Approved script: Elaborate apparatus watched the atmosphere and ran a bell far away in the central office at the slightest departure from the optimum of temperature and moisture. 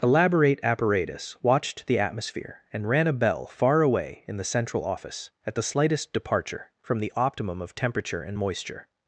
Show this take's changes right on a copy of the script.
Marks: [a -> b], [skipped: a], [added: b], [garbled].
Elaborate apparatus watched the atmosphere and ran a bell far away in the central office at the slightest departure from the optimum of temperature and moisture.